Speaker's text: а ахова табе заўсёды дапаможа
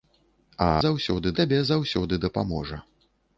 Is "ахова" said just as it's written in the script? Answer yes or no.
no